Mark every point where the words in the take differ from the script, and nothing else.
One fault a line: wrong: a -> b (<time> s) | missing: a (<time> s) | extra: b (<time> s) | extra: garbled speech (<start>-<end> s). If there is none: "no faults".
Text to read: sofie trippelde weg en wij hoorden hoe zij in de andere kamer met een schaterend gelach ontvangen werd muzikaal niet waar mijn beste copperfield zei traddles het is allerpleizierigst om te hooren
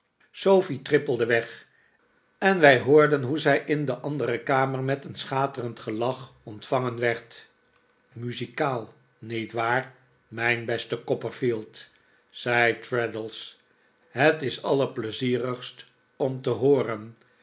no faults